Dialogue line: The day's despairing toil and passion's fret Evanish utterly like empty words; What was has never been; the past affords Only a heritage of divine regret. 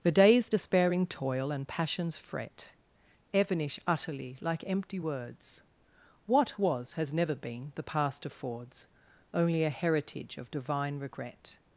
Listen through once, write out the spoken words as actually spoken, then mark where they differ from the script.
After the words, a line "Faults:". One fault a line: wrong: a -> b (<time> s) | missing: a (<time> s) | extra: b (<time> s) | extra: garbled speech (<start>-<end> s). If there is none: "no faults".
The day's despairing toil and passion's fret Evanish utterly like empty words; What was has never been; the past affords Only a heritage of divine regret.
Faults:
no faults